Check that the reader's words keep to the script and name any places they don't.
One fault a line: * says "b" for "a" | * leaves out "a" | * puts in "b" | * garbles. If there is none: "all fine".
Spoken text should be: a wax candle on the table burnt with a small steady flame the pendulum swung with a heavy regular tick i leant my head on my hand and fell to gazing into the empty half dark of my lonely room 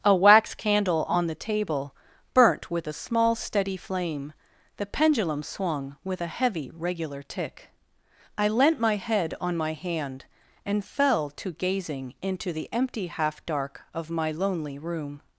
all fine